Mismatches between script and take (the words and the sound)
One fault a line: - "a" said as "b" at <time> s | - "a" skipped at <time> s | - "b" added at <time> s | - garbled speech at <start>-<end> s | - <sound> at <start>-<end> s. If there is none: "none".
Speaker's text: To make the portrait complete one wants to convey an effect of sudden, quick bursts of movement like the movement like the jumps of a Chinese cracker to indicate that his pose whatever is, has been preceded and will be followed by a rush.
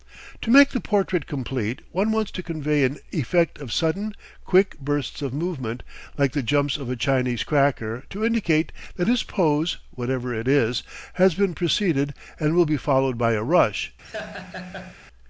- "movement like the" skipped at 6.4 s
- "it" added at 10.3 s
- laugh at 14.0-14.9 s